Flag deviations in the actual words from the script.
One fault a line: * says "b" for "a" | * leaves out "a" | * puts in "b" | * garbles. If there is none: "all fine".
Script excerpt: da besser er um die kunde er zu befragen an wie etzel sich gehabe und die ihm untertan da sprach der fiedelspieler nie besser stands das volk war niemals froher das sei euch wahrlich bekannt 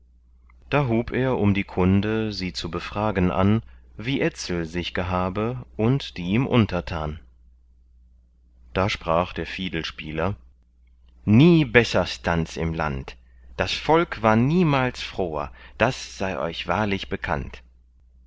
* says "hub" for "besser"
* says "sie" for "er"
* puts in "im land"